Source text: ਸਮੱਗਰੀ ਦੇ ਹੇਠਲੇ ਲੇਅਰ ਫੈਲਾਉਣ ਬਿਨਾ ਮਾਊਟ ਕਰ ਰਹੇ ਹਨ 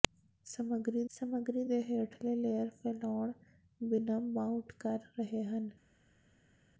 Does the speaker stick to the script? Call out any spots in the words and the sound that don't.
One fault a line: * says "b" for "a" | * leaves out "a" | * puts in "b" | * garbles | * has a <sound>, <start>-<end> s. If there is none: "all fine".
* puts in "ਸਮੱਗਰੀ"